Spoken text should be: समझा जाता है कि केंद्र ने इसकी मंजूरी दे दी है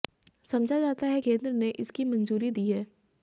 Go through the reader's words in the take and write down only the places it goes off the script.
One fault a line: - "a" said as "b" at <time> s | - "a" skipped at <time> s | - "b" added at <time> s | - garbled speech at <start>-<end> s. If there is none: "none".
- "कि" skipped at 1.2 s
- "दे" skipped at 2.5 s